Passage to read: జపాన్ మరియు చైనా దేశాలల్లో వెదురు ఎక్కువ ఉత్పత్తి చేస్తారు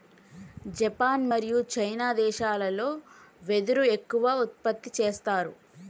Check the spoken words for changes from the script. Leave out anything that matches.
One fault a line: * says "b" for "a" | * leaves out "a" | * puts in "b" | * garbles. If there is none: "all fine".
all fine